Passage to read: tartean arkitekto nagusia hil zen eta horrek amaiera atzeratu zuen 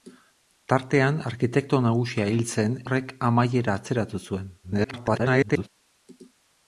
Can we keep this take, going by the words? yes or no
no